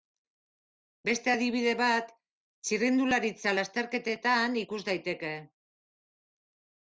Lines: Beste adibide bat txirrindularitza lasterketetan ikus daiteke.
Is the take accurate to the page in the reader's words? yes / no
yes